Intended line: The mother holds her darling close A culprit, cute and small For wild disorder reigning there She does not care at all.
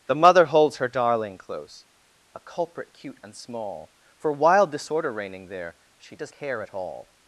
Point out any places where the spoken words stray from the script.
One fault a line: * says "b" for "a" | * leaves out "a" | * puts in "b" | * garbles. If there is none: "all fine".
* leaves out "not"